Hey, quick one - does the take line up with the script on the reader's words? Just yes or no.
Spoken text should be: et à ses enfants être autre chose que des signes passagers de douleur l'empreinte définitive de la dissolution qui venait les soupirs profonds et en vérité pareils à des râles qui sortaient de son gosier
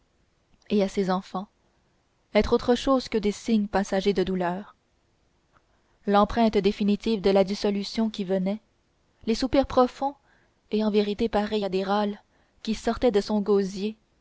yes